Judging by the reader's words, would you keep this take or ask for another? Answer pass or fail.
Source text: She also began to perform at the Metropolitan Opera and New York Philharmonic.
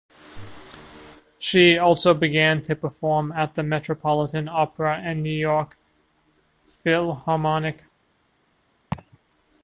pass